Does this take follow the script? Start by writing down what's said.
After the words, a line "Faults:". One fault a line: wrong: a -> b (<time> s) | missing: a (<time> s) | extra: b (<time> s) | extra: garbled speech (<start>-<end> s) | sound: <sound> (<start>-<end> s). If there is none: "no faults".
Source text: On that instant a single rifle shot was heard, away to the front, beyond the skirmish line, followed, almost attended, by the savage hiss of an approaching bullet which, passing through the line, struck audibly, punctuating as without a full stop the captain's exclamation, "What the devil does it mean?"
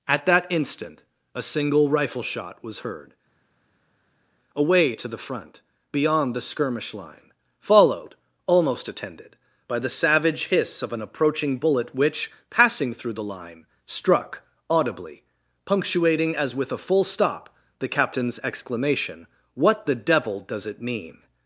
At that instant a single rifle shot was heard, away to the front, beyond the skirmish line, followed, almost attended, by the savage hiss of an approaching bullet which, passing through the line, struck audibly, punctuating as with a full stop the captain's exclamation, "What the devil does it mean?"
Faults:
wrong: On -> At (0.1 s)
wrong: without -> with (16.5 s)